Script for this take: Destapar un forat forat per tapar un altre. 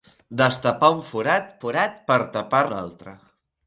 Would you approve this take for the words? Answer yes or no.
yes